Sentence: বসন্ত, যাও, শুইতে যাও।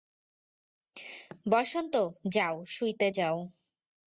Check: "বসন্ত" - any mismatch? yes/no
no